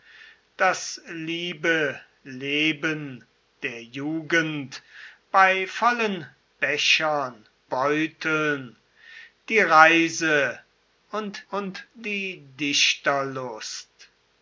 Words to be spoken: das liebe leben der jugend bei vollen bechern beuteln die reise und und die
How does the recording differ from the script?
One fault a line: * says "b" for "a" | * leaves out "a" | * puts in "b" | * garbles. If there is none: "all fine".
all fine